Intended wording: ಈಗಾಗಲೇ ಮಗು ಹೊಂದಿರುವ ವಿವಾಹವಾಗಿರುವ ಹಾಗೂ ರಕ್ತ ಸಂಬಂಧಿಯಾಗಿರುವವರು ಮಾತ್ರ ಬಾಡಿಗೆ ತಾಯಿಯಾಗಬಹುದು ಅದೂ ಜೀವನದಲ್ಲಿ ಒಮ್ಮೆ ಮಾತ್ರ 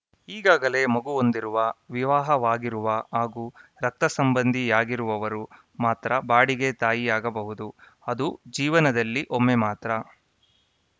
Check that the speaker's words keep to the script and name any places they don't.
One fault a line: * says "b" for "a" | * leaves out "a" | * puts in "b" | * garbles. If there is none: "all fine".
all fine